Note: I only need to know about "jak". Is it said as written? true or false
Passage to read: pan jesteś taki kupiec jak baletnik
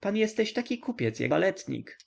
true